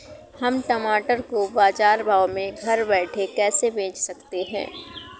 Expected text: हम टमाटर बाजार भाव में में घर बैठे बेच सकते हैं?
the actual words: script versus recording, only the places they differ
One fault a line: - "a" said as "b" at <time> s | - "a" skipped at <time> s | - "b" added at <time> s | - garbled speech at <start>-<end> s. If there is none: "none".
- "को" added at 1.2 s
- "में" skipped at 2.6 s
- "कैसे" added at 3.3 s